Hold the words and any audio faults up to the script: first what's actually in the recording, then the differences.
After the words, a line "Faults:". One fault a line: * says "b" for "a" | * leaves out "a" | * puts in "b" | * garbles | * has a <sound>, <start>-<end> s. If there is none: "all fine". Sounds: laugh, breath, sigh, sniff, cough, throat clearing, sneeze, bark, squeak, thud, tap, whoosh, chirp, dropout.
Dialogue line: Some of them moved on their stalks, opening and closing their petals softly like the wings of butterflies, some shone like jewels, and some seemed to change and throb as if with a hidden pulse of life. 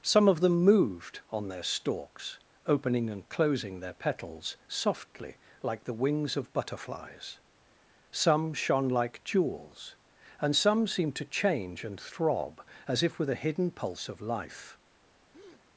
Some of them moved on their stalks, opening and closing their petals softly like the wings of butterflies, some shone like jewels, and some seemed to change and throb as if with a hidden pulse of life.
Faults:
* has a breath, 15.3-15.6 s